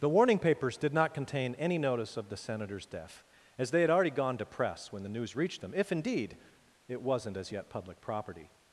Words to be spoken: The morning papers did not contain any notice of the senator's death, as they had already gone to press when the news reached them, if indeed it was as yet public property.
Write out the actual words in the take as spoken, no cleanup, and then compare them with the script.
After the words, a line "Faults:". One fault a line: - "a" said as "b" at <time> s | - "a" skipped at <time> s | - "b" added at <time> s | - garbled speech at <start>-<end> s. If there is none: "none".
The warning papers did not contain any notice of the senator's death, as they had already gone to press when the news reached them, if indeed it wasn't as yet public property.
Faults:
- "morning" said as "warning" at 0.1 s
- "was" said as "wasn't" at 7.0 s